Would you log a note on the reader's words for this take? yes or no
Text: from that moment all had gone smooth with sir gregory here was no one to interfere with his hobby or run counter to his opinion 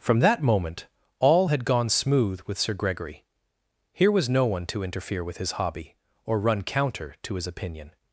no